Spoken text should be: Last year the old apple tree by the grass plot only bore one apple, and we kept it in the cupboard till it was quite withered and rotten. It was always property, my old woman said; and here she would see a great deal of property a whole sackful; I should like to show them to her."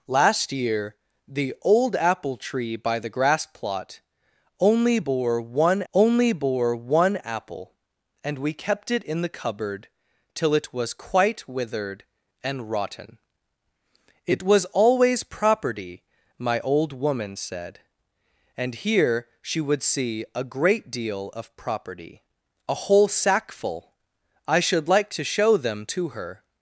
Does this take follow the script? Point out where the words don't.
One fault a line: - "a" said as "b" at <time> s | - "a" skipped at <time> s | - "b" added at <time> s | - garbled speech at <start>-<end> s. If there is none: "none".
- "only bore one" added at 5.9 s